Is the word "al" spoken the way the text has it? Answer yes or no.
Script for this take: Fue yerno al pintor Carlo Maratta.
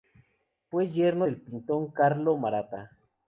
no